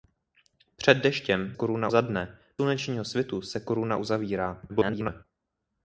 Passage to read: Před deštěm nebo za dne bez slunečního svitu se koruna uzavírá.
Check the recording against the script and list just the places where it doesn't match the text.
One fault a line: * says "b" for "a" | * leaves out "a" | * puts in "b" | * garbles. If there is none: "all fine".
* says "koruna" for "nebo"
* leaves out "bez"
* garbles